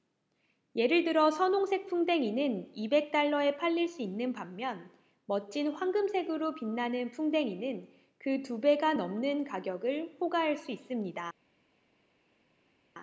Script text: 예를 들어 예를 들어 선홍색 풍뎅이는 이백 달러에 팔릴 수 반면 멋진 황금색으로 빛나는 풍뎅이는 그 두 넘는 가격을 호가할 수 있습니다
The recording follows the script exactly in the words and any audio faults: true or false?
false